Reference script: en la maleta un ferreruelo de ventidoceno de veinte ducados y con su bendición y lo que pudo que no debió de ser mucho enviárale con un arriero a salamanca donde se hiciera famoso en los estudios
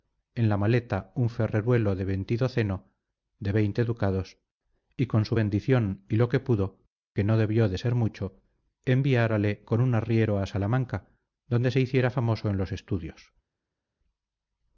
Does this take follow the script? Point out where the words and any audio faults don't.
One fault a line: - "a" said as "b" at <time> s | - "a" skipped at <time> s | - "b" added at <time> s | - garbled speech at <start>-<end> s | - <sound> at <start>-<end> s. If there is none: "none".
none